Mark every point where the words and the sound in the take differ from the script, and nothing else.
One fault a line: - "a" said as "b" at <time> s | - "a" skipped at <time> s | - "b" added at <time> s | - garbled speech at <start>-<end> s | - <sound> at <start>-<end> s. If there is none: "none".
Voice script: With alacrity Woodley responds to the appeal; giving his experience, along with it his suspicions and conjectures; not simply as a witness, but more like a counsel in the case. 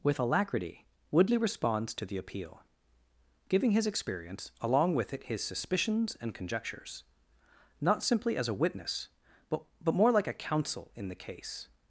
- "but" added at 9.8 s